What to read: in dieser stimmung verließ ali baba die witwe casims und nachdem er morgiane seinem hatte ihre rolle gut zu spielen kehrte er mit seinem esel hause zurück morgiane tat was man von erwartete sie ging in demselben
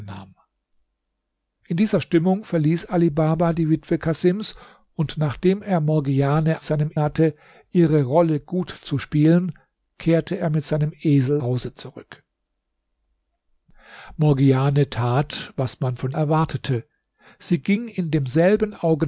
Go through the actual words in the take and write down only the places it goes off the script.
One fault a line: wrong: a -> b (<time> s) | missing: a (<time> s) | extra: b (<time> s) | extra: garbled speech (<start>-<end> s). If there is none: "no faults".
no faults